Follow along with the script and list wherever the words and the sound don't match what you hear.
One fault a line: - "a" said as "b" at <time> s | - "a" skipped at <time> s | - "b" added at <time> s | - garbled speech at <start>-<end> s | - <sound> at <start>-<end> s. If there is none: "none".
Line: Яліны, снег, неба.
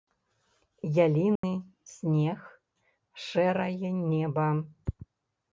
- dropout at 1.4-1.4 s
- "шэрае" added at 3.3 s